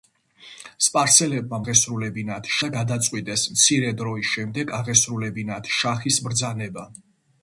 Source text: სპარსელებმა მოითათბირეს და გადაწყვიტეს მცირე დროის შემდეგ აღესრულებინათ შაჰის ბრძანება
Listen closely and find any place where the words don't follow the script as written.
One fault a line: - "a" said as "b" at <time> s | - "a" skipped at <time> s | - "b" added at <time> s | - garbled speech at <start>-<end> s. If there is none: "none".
- "მოითათბირეს" said as "აღესრულებინათ" at 1.6 s